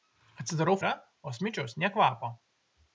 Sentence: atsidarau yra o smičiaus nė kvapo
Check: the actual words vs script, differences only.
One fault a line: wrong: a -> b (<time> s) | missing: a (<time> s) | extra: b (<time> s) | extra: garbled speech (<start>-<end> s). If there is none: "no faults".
no faults